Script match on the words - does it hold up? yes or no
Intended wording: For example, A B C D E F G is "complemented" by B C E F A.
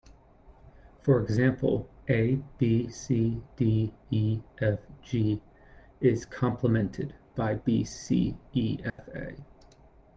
yes